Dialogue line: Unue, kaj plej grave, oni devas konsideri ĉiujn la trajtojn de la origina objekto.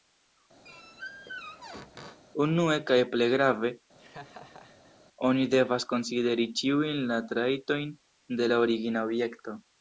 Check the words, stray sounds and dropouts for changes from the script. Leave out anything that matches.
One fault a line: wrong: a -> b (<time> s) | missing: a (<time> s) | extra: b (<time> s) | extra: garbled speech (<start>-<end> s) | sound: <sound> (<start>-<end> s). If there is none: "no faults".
sound: squeak (0.6-2.2 s)
sound: laugh (4.0-5.0 s)